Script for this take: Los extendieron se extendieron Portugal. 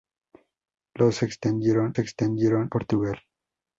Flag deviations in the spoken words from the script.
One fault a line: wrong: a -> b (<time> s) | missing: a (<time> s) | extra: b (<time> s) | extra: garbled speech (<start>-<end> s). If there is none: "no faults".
no faults